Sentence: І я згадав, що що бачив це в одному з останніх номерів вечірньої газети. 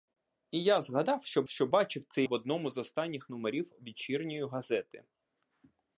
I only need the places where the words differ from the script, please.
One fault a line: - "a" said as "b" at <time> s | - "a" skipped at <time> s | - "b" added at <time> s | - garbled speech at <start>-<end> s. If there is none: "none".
none